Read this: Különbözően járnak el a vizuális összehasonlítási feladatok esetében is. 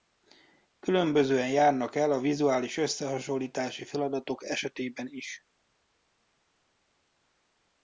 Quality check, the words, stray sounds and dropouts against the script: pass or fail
pass